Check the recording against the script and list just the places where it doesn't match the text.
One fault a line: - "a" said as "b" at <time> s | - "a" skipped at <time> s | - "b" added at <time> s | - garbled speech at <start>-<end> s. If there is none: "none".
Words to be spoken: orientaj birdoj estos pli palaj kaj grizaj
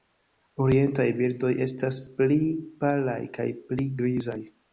- "estos" said as "estas" at 1.6 s
- "pli" added at 3.7 s